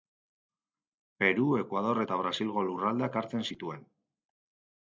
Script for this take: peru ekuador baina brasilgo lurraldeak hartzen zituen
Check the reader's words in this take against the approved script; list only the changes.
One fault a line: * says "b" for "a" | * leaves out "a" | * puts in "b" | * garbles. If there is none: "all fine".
* says "eta" for "baina"